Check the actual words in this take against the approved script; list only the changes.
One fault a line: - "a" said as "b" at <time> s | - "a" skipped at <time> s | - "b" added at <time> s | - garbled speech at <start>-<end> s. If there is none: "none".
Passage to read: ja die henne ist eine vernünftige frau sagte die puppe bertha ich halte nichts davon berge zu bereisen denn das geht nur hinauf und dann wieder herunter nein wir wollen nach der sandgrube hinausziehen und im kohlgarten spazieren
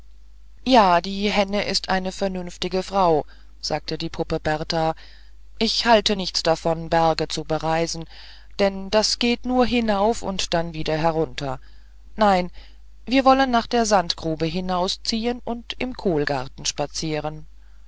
none